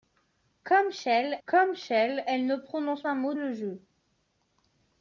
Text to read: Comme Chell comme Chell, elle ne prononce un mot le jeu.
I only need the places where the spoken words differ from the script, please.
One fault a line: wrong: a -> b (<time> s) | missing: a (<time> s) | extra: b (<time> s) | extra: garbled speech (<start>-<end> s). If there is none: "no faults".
no faults